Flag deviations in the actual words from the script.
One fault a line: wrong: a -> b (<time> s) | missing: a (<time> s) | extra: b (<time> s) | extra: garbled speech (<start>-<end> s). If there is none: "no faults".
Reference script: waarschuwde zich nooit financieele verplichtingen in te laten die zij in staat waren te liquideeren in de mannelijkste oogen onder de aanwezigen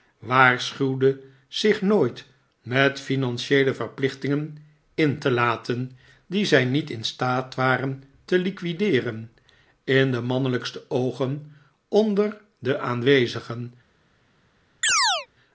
extra: met (2.6 s)
extra: niet (6.6 s)